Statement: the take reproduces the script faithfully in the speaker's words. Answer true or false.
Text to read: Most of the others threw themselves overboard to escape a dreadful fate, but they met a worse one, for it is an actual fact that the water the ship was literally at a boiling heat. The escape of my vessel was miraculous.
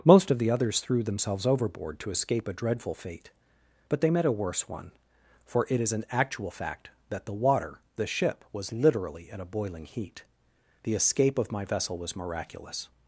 true